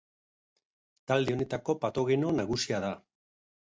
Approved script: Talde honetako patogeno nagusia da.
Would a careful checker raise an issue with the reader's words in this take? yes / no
no